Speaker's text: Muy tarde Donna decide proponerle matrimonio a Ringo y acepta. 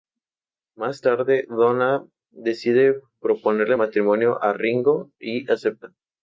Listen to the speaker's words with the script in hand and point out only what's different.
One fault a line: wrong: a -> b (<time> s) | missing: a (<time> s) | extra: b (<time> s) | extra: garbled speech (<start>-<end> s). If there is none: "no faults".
wrong: Muy -> Más (0.8 s)